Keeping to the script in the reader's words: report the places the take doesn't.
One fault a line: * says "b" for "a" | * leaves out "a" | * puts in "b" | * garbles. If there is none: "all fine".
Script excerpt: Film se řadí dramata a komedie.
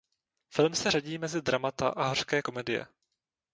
* puts in "mezi"
* puts in "hořké"